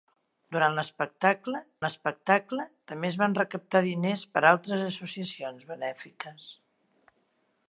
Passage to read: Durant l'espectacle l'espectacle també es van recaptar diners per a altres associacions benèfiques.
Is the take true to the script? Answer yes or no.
yes